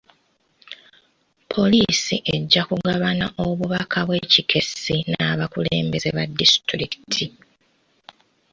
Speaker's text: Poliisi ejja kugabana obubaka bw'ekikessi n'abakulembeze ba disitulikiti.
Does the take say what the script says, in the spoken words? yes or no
yes